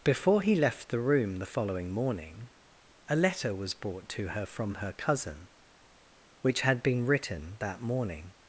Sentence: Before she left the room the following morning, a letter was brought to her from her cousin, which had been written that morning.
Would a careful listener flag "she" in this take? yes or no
yes